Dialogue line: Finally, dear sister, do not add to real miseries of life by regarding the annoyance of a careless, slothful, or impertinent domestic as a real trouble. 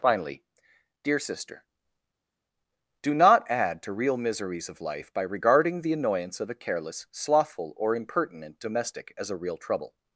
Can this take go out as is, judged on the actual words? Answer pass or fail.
pass